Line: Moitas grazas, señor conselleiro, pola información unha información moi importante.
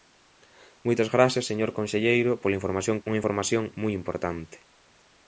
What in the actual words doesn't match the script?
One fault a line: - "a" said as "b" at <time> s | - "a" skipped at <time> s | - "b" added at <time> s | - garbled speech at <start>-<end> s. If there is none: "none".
none